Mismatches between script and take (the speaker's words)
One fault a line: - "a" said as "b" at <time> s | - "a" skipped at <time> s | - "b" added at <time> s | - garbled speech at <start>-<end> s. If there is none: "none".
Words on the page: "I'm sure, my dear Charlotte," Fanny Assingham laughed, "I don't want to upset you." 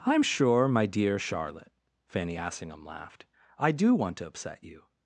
- "don't" said as "do" at 3.7 s